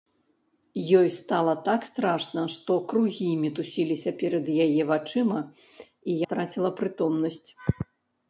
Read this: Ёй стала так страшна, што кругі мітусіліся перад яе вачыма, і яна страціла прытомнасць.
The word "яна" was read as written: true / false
false